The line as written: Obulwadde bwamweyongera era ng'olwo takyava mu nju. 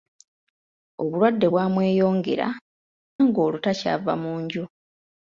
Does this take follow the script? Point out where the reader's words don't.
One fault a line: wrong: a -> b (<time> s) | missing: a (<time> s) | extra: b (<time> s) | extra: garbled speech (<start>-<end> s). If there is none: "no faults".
missing: era (2.5 s)